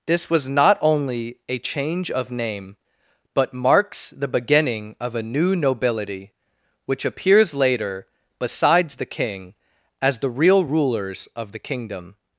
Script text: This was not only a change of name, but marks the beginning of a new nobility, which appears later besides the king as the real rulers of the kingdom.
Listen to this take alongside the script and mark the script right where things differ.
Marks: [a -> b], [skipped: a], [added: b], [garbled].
This was not only a change of name, but marks the beginning of a new nobility, which appears later besides the king as the real rulers of the kingdom.